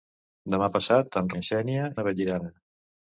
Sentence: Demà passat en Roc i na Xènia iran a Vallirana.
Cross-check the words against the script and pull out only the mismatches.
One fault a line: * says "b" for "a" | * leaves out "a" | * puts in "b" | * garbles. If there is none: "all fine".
* leaves out "Roc"
* leaves out "iran"